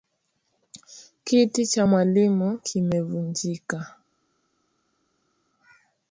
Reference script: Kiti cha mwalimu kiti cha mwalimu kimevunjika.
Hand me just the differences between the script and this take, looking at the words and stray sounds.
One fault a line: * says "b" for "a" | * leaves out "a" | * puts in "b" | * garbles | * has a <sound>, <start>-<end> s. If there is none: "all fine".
* leaves out "kiti cha mwalimu"